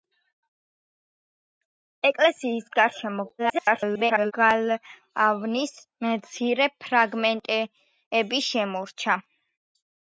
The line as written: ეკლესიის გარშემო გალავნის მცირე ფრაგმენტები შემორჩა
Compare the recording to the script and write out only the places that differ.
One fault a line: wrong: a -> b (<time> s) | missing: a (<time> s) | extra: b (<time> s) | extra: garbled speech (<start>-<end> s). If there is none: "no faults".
extra: garbled speech (3.4-4.3 s)